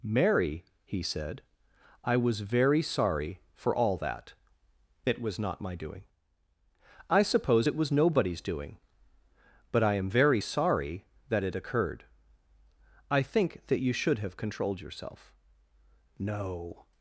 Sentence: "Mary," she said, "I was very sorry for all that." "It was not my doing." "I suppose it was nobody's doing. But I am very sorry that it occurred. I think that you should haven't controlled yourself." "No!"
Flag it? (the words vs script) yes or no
yes